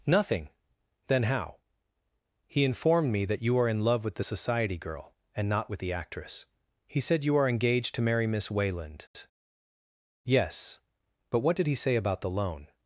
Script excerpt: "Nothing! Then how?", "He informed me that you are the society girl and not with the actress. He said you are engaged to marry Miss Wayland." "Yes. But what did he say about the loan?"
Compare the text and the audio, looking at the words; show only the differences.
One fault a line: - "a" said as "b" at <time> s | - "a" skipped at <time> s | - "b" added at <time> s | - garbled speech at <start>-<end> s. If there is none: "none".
- "in love with" added at 3.7 s